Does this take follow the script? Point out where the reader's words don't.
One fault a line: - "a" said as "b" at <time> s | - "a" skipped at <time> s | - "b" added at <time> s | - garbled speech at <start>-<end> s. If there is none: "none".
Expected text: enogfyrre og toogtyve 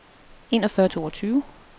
none